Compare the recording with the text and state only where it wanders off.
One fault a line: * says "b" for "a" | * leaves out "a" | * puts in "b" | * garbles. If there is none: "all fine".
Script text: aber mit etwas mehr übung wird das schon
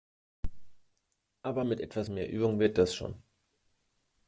all fine